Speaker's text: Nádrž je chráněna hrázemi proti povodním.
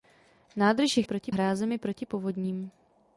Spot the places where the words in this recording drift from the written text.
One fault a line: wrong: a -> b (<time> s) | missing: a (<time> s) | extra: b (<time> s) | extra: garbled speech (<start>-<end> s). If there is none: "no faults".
wrong: chráněna -> proti (1.0 s)